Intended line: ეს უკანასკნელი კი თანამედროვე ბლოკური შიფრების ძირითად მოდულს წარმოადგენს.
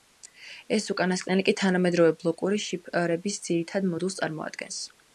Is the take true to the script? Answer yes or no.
yes